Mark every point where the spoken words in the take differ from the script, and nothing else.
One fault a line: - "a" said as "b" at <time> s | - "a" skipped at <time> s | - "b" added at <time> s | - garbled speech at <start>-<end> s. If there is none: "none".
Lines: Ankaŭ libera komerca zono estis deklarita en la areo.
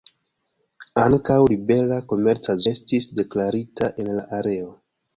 - "zono" skipped at 2.6 s